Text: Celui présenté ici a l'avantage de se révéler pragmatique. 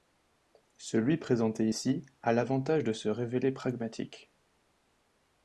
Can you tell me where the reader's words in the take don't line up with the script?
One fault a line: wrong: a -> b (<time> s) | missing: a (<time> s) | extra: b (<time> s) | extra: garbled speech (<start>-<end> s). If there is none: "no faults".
no faults